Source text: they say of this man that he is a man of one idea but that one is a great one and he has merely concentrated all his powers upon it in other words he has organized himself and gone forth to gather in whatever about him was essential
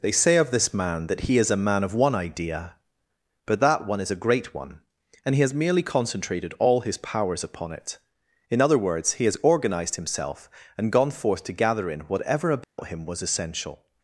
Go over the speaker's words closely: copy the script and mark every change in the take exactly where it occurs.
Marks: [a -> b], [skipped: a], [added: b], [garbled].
they say of this man that he is a man of one idea but that one is a great one and he has merely concentrated all his powers upon it in other words he has organized himself and gone forth to gather in whatever about him was essential